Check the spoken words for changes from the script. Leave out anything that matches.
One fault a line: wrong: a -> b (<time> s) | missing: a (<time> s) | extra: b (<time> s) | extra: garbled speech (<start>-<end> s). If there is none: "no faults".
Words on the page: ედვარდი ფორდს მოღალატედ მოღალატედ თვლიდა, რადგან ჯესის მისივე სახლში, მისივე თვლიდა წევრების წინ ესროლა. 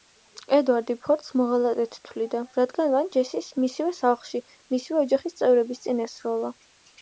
missing: მოღალატედ (2.0 s)
extra: მან (3.0 s)
wrong: თვლიდა -> ოჯახის (5.1 s)